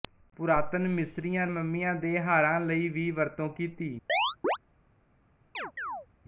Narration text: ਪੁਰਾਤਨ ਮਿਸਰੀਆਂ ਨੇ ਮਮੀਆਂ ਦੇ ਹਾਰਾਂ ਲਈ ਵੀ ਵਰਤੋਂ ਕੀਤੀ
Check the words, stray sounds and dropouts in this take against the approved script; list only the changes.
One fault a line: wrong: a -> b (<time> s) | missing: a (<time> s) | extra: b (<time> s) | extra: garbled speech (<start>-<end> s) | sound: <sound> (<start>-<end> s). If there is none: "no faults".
missing: ਨੇ (1.4 s)
sound: chirp (4.1-4.6 s)
sound: chirp (5.5-6.1 s)